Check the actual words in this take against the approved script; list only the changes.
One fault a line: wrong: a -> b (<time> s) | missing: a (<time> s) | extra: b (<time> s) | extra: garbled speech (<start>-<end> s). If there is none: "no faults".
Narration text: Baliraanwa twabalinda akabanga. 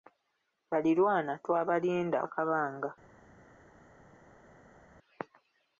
no faults